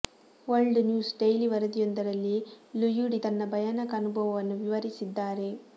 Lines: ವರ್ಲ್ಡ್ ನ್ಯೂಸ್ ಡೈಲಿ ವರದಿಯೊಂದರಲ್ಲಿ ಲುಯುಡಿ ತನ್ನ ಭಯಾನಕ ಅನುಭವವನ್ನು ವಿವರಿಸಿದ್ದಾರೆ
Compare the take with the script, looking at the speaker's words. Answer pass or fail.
pass